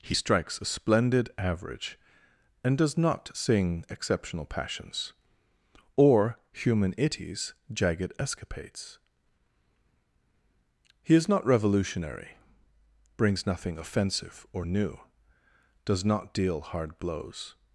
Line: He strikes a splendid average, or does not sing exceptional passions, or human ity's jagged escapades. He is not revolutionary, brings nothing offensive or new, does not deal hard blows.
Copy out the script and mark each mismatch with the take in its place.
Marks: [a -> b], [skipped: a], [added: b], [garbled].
He strikes a splendid average, [or -> and] does not sing exceptional passions, or human ity's jagged escapades. He is not revolutionary, brings nothing offensive or new, does not deal hard blows.